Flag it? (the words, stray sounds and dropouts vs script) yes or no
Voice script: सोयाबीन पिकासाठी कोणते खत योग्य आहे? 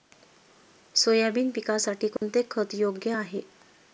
yes